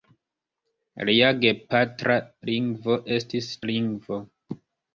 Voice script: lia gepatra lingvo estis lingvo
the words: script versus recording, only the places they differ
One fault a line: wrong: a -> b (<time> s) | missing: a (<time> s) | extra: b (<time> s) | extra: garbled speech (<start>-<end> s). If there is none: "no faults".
no faults